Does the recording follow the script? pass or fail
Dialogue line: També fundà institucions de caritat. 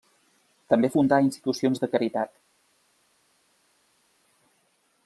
pass